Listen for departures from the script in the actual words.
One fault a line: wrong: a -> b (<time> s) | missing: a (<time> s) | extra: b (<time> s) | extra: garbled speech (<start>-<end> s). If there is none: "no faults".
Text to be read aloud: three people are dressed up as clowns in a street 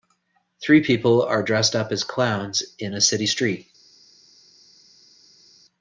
extra: city (3.0 s)